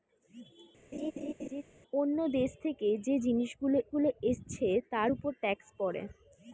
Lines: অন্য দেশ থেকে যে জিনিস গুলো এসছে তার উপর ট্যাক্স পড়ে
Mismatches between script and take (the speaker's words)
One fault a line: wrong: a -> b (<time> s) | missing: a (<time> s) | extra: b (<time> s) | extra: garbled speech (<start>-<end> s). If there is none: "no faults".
extra: গুলো (3.9 s)